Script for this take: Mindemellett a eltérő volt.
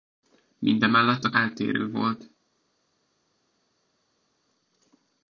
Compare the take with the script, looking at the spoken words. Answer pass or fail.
pass